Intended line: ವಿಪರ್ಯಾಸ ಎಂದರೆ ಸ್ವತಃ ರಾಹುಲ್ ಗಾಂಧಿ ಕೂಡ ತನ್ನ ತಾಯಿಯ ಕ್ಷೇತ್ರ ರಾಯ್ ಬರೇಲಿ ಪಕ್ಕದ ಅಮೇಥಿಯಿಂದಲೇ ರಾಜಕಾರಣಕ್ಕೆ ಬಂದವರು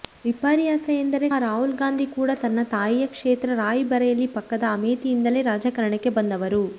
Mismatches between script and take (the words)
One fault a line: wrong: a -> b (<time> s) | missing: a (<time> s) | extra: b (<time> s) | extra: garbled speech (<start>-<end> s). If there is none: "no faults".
missing: ಸ್ವತಃ (1.3 s)